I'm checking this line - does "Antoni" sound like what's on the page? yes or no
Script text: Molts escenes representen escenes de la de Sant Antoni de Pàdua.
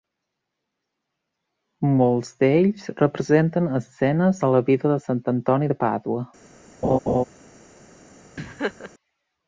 yes